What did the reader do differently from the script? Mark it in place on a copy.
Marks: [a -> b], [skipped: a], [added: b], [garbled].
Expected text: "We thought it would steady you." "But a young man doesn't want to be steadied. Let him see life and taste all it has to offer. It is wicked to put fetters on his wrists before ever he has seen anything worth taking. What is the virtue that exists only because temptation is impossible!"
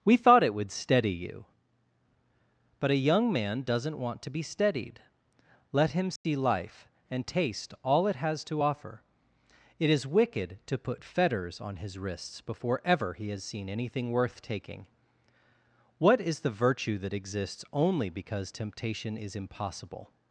"We thought it would steady you." "But a young man doesn't want to be steadied. Let him see life and taste all it has to offer. It is wicked to put fetters on his wrists before ever he has seen anything worth taking. What is the virtue that exists only because temptation is impossible!"